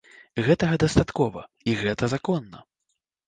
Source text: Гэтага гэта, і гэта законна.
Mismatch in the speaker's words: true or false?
true